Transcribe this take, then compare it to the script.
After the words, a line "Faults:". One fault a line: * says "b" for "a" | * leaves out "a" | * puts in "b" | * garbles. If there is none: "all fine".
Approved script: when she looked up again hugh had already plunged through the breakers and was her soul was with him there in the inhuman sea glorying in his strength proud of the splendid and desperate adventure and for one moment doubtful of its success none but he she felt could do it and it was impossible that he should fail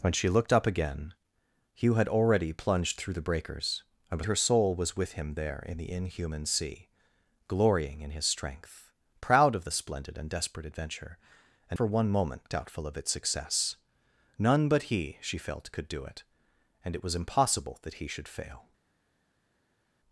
when she looked up again hugh had already plunged through the breakers and was her soul was with him there in the inhuman sea glorying in his strength proud of the splendid and desperate adventure and for one moment doubtful of its success none but he she felt could do it and it was impossible that he should fail
Faults:
all fine